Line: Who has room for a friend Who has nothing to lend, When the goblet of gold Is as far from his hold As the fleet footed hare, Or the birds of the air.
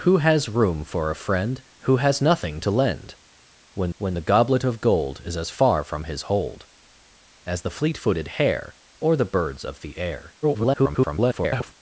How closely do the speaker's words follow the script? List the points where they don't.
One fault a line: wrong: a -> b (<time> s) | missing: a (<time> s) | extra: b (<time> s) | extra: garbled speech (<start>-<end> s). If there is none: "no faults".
extra: When (4.0 s)
extra: garbled speech (10.4-11.7 s)